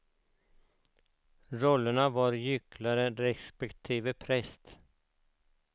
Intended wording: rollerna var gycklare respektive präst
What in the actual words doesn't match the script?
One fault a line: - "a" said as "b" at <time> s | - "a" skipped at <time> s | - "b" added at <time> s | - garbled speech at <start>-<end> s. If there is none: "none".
none